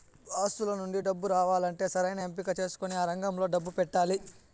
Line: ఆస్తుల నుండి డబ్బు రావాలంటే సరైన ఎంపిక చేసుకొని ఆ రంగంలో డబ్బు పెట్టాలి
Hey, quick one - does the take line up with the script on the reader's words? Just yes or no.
yes